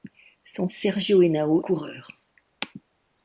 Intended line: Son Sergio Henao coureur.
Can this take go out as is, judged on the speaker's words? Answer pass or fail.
pass